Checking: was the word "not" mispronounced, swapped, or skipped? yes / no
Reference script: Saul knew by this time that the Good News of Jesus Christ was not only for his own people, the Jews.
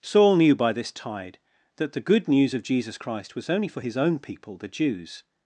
yes